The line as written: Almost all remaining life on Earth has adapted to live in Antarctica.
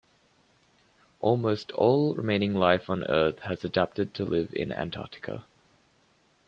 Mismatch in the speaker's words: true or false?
false